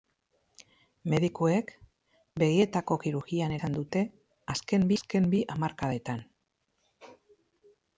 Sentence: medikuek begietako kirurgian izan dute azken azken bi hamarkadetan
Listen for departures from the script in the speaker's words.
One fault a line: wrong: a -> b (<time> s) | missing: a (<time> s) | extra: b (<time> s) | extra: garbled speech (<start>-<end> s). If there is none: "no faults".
no faults